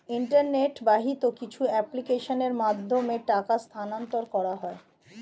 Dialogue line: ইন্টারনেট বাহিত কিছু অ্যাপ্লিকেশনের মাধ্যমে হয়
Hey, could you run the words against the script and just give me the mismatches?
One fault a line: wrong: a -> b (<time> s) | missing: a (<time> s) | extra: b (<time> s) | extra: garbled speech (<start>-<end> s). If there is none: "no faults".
extra: টাকা স্থানান্তর করা (3.3 s)